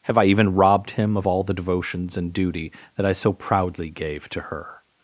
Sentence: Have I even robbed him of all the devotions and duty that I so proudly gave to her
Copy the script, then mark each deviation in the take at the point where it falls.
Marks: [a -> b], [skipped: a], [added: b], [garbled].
Have I even robbed him of all the devotions and duty that I so proudly gave to her